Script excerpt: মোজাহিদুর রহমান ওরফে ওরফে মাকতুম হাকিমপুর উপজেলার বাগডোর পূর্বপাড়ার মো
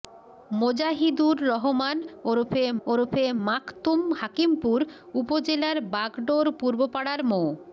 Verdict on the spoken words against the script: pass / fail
pass